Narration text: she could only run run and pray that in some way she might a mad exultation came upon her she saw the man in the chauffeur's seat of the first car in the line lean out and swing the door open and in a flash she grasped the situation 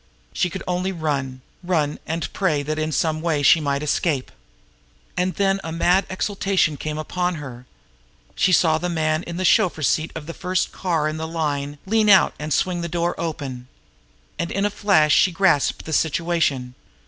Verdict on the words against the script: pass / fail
fail